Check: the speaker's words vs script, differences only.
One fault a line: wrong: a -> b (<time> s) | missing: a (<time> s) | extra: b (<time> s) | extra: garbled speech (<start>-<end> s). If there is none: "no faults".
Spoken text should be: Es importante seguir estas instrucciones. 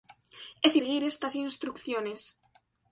missing: importante (0.8 s)